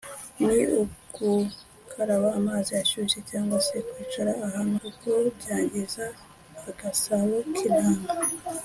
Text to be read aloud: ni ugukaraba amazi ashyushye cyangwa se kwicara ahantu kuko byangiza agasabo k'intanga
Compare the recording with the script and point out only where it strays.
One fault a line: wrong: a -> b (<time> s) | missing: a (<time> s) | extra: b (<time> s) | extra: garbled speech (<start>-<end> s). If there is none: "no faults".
no faults